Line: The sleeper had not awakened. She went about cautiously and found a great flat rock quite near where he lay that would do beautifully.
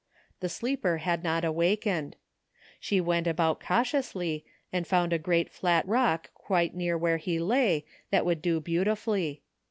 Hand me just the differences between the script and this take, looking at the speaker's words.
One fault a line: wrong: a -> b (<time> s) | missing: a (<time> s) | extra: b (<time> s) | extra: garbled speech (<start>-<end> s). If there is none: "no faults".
no faults